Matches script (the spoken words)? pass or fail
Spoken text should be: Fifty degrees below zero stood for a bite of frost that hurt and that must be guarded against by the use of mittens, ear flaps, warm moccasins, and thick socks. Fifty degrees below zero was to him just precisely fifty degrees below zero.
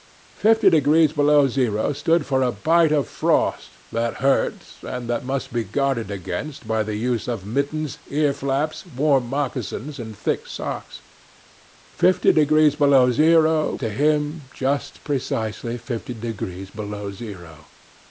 fail